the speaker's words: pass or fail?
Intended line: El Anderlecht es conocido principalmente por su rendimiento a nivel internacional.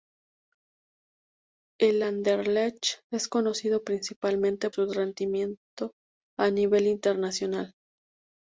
fail